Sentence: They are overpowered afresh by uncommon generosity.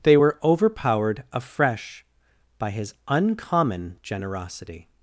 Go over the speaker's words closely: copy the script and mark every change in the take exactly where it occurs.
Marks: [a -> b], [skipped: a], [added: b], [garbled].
They [are -> were] overpowered afresh by [added: his] uncommon generosity.